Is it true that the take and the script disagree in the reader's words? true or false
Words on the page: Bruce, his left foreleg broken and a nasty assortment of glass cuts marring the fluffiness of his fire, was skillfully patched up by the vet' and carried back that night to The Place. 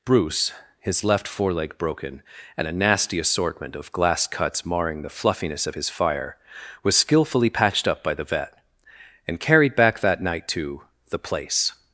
false